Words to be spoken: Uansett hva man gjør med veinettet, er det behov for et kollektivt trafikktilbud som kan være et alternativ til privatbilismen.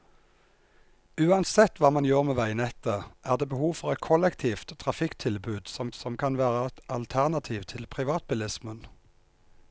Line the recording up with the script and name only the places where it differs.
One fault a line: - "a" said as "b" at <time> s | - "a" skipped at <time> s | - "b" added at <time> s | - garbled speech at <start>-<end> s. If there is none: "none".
- "som" added at 5.9 s